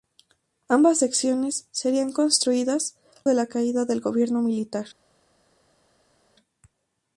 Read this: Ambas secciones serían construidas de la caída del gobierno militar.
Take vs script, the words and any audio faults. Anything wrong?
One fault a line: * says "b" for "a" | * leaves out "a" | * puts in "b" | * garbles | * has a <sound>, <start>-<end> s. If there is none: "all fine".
all fine